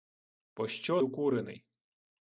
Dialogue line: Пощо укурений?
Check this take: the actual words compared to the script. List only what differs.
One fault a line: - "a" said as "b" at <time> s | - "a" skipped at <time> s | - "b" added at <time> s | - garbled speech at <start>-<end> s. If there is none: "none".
none